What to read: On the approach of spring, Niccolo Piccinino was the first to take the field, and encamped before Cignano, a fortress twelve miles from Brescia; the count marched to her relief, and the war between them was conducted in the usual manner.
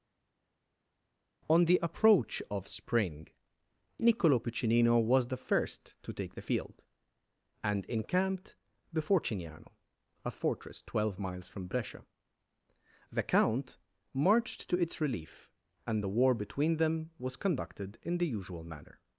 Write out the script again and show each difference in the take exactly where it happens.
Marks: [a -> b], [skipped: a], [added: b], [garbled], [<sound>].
On the approach of spring, Niccolo Piccinino was the first to take the field, and encamped before Cignano, a fortress twelve miles from Brescia; the count marched to [her -> its] relief, and the war between them was conducted in the usual manner.